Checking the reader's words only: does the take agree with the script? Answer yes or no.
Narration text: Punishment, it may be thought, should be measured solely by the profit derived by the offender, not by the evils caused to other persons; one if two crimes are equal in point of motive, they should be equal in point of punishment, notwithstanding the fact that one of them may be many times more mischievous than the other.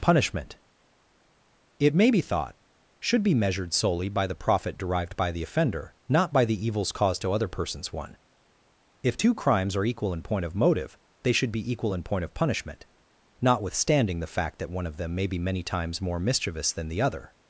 yes